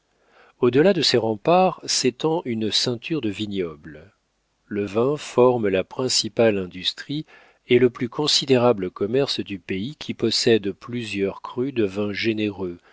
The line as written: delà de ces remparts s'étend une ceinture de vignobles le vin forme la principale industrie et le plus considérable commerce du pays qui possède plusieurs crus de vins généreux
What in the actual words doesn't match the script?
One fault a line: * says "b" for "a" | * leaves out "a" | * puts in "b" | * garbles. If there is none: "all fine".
all fine